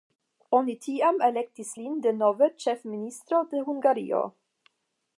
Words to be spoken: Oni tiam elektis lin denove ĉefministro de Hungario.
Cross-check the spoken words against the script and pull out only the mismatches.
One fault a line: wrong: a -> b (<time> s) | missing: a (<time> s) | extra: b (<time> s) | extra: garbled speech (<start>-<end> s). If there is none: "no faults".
no faults